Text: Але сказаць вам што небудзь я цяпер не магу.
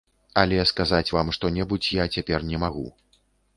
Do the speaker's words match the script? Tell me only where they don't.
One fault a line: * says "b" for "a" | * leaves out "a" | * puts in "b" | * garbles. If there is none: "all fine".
all fine